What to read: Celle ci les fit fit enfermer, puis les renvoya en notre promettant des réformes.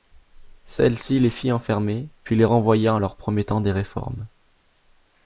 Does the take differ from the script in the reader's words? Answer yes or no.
yes